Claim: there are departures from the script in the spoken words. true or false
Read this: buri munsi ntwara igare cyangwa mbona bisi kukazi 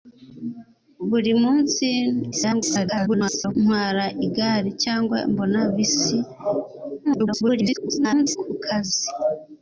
true